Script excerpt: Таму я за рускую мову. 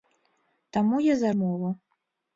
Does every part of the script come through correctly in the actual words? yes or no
no